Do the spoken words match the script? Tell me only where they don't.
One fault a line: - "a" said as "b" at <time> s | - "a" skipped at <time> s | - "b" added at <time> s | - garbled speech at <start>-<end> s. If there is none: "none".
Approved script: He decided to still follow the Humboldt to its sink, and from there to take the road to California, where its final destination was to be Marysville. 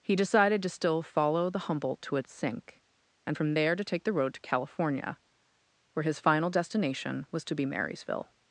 - "its" said as "his" at 6.0 s